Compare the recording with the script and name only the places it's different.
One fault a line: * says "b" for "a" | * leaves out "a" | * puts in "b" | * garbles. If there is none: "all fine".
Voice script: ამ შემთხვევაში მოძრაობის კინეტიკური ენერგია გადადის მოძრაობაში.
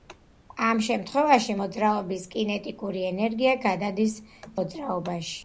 all fine